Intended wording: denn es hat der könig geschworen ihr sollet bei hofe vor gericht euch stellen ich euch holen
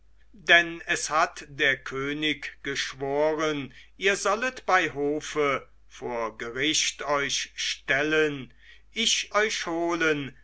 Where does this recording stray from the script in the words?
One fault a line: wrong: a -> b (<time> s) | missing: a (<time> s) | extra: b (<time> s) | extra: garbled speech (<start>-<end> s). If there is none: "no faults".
no faults